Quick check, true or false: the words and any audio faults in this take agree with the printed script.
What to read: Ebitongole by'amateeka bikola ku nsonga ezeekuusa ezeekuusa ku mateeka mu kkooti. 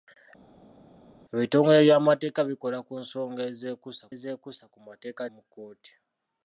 true